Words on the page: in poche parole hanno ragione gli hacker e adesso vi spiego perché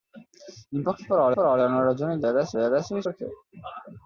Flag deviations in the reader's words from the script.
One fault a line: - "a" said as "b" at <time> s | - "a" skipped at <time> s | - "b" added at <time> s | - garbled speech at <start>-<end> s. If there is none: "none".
- "parole" added at 1.3 s
- "hacker" said as "adesso" at 2.3 s
- "spiego" skipped at 3.0 s